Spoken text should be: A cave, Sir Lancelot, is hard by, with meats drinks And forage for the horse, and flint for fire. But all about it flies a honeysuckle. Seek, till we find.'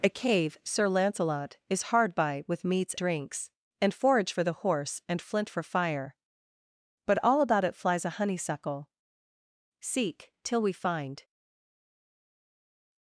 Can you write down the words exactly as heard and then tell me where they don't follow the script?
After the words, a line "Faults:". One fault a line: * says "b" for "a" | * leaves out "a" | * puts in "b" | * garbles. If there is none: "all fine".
A cave, Sir Lancelot, is hard by, with meats drinks And forage for the horse, and flint for fire. But all about it flies a honeysuckle. Seek, till we find.'
Faults:
all fine